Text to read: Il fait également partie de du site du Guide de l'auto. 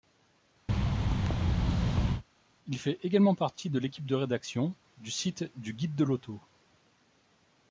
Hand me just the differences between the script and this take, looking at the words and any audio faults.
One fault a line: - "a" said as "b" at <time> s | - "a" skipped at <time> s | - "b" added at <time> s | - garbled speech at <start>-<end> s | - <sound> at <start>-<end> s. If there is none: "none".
- thud at 0.7-2.2 s
- "l'équipe de rédaction" added at 3.8 s